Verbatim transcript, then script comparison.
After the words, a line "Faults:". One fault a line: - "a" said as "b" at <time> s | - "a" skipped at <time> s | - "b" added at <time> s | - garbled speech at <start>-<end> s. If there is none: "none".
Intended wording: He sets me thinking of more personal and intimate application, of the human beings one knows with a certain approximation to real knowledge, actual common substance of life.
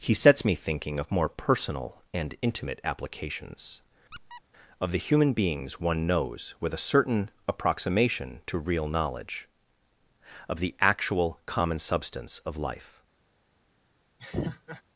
He sets me thinking of more personal and intimate applications, of the human beings one knows with a certain approximation to real knowledge, of the actual common substance of life.
Faults:
- "application" said as "applications" at 2.8 s
- "of the" added at 10.5 s